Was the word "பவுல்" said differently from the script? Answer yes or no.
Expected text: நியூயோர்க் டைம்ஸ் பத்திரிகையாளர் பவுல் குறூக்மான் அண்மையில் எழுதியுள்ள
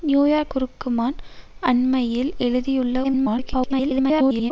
yes